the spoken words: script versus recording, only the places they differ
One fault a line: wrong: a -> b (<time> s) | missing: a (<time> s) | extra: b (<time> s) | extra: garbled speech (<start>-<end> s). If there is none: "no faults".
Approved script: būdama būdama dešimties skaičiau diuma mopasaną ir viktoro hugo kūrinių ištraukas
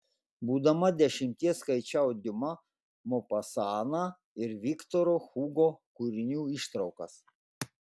missing: būdama (0.9 s)